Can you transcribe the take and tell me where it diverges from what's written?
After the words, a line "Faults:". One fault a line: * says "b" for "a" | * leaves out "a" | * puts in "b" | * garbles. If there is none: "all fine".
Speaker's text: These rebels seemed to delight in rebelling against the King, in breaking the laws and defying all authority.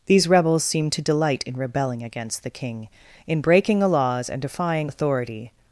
These rebels seemed to delight in rebelling against the King, in breaking the laws and defying authority.
Faults:
* leaves out "all"